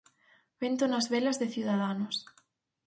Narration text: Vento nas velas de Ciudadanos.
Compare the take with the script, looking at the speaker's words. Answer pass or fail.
pass